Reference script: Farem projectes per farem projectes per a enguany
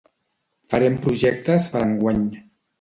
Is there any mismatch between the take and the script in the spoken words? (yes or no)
yes